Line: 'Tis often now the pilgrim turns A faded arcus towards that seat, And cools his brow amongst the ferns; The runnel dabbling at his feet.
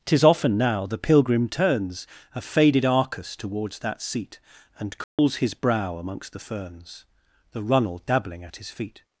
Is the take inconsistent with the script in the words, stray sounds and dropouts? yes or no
yes